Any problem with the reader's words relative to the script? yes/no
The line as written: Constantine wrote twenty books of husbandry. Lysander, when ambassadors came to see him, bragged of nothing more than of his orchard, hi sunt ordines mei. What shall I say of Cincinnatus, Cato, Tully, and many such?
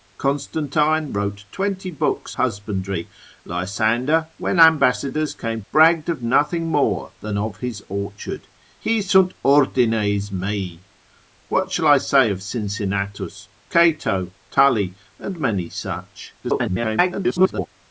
yes